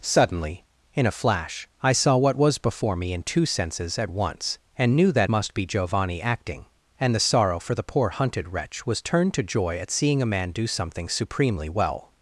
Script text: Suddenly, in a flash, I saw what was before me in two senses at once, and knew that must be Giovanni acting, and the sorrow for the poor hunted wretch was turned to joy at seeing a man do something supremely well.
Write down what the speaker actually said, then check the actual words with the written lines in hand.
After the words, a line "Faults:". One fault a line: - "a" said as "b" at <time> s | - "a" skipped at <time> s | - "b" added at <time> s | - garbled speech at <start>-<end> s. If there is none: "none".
Suddenly, in a flash, I saw what was before me in two senses at once, and knew that must be Giovanni acting, and the sorrow for the poor hunted wretch was turned to joy at seeing a man do something supremely well.
Faults:
none